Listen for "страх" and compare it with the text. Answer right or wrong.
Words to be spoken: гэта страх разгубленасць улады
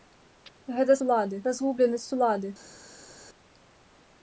wrong